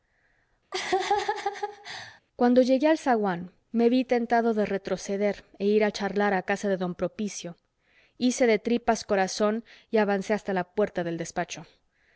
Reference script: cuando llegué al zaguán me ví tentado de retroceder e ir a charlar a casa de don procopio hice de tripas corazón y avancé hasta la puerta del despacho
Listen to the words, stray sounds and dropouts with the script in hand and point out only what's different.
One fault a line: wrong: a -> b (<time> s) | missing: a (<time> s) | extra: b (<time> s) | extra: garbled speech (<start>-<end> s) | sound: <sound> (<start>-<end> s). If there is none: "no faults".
sound: laugh (0.7-2.2 s)